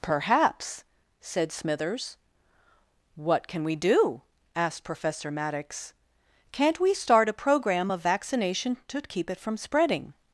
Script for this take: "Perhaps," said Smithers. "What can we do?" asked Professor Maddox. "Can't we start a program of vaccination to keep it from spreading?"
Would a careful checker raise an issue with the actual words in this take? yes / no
no